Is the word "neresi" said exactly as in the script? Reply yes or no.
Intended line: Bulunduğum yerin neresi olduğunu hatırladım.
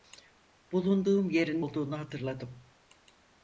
no